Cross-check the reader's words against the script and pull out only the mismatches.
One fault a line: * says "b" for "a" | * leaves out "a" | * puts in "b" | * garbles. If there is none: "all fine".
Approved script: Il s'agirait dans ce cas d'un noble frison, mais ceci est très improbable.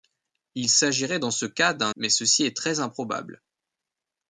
* leaves out "noble frison"